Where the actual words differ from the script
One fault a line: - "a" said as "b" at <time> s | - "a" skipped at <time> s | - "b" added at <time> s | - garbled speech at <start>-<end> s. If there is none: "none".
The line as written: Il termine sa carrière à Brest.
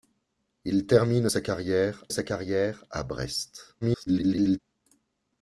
- "sa carrière" added at 2.1 s
- garbled speech at 3.8-4.6 s